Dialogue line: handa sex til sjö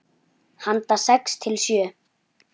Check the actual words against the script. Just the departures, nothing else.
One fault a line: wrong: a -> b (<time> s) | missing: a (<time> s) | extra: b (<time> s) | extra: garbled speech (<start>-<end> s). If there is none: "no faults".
no faults